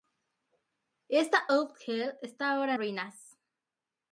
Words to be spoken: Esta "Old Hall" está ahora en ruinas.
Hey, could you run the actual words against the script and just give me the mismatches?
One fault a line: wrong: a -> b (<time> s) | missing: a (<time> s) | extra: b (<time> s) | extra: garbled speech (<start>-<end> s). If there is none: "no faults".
missing: en (2.7 s)